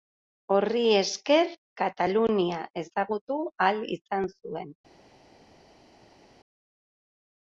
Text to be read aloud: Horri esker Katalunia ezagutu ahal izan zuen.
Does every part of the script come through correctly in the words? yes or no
yes